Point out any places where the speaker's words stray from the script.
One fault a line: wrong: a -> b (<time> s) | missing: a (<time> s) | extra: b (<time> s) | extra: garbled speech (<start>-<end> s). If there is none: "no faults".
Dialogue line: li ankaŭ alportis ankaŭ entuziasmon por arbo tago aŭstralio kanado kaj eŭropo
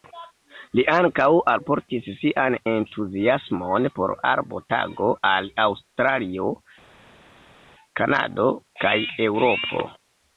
wrong: ankaŭ -> sian (2.2 s)
extra: al (5.3 s)